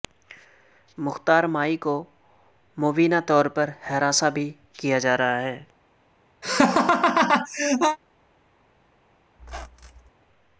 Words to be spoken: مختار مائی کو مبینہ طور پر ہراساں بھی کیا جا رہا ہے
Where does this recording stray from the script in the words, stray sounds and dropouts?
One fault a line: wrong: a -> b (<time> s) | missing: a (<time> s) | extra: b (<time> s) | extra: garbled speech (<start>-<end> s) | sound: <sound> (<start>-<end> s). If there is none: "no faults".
sound: laugh (6.4-8.0 s)
sound: squeak (9.4-10.1 s)